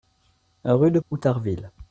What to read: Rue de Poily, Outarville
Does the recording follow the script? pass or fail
fail